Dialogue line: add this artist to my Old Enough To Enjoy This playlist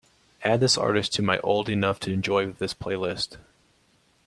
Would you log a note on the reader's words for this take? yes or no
no